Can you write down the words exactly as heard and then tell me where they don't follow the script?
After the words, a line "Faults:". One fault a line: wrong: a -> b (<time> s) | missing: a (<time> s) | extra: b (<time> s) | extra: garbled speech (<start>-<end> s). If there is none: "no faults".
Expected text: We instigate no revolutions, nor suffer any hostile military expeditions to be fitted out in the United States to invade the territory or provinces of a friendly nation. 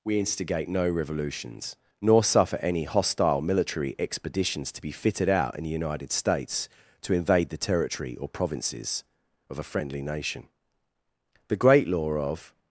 We instigate no revolutions, nor suffer any hostile military expeditions to be fitted out in the United States to invade the territory or provinces of a friendly nation. The great law of
Faults:
extra: The great law of (11.4 s)